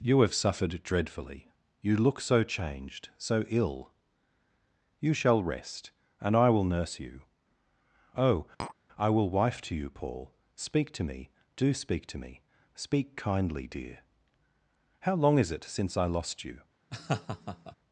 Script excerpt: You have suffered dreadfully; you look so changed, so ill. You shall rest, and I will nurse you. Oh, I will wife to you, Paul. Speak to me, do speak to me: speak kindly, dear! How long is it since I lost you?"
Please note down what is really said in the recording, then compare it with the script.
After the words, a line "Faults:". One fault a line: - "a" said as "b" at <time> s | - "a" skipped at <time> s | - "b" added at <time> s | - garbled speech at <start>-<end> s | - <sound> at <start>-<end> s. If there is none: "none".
You have suffered dreadfully; you look so changed, so ill. You shall rest, and I will nurse you. Oh, I will wife to you, Paul. Speak to me, do speak to me: speak kindly, dear! How long is it since I lost you?"
Faults:
- tap at 8.6-8.8 s
- laugh at 16.9-17.8 s